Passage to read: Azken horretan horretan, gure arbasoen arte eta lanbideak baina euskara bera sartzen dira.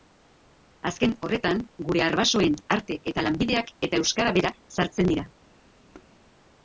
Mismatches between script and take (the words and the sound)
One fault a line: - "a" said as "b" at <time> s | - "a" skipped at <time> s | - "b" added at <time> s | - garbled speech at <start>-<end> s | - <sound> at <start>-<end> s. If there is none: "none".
- "horretan" skipped at 1.6 s
- "baina" said as "eta" at 3.9 s
- thud at 5.9-6.2 s